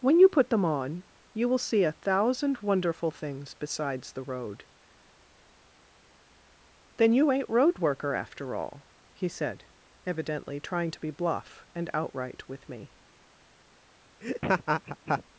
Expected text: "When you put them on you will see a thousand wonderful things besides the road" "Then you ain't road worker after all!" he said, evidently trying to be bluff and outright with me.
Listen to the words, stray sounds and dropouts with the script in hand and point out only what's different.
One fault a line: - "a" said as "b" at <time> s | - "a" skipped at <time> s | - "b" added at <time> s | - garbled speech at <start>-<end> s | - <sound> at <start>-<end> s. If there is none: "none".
- laugh at 14.2-15.2 s